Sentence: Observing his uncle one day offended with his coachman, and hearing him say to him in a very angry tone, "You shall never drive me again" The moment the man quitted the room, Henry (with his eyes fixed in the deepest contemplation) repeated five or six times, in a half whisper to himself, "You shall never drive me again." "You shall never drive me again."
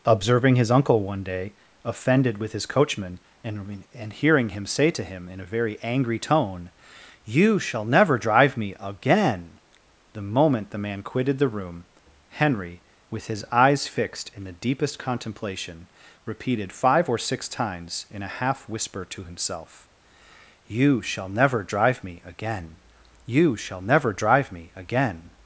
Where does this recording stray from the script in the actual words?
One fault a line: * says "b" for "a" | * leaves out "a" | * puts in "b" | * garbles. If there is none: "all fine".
* puts in "and"